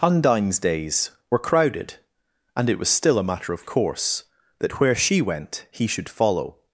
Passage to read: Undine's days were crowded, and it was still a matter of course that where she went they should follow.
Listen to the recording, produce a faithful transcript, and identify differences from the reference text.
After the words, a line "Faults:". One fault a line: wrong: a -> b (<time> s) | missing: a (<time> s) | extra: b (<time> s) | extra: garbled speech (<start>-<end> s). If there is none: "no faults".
Undine's days were crowded, and it was still a matter of course that where she went he should follow.
Faults:
wrong: they -> he (5.7 s)